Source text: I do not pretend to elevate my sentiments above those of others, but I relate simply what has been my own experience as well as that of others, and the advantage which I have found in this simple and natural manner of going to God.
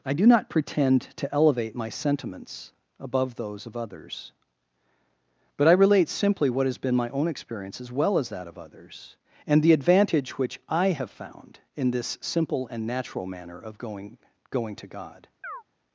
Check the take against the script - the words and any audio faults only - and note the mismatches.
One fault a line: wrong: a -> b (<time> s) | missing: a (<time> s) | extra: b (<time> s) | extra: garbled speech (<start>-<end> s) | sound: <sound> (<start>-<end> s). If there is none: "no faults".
extra: going (14.5 s)
sound: chirp (15.4-15.6 s)